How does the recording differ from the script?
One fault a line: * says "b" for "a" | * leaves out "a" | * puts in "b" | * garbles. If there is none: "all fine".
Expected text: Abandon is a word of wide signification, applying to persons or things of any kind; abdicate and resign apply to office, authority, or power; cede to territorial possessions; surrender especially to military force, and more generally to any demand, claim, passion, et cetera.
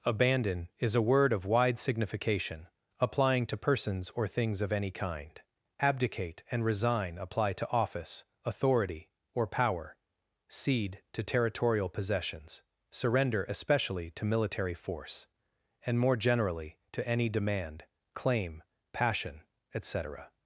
all fine